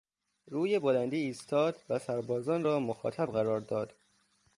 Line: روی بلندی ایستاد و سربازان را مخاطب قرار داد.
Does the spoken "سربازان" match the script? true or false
true